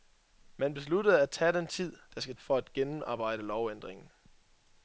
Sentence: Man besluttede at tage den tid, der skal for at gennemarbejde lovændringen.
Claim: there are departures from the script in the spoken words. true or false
false